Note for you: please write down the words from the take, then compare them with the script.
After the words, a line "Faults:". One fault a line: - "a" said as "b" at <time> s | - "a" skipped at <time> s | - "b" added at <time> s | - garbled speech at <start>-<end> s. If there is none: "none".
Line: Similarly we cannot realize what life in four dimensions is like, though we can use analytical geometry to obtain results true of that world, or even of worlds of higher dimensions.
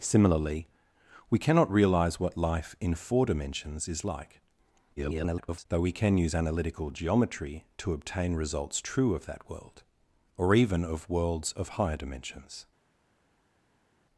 Similarly we cannot realize what life in four dimensions is like, [garbled] though we can use analytical geometry to obtain results true of that world, or even of worlds of higher dimensions.
Faults:
- garbled speech at 5.0-5.7 s